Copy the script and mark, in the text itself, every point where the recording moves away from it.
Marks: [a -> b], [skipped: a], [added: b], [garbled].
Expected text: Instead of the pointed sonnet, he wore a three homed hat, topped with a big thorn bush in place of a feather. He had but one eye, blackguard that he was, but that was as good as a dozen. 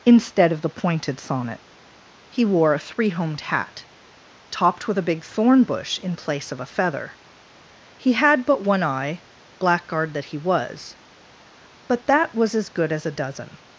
Instead of the pointed sonnet, he wore a three homed hat, topped with a big thorn bush in place of a feather. He had but one eye, blackguard that he was, but that was as good as a dozen.